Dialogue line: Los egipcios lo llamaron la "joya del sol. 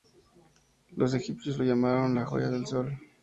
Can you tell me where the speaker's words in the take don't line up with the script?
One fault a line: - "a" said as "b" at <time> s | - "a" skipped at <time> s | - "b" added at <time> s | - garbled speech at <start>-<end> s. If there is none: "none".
none